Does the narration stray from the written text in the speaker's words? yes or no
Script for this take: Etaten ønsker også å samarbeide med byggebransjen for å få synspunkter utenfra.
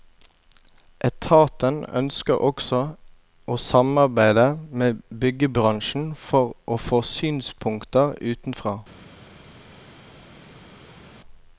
no